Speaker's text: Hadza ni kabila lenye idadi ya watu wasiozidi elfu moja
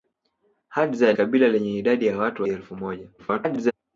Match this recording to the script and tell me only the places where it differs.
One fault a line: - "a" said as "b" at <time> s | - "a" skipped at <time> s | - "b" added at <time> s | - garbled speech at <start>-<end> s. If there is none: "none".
- "ni" skipped at 1.1 s
- "wasiozidi" skipped at 2.4 s
- garbled speech at 3.2-3.7 s